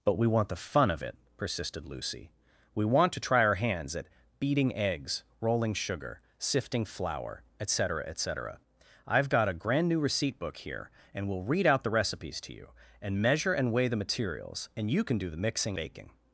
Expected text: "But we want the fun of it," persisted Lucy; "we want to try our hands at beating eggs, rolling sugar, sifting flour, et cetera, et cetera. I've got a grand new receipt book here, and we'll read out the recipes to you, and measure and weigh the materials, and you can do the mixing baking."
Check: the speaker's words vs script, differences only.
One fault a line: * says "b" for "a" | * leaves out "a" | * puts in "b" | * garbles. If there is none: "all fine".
all fine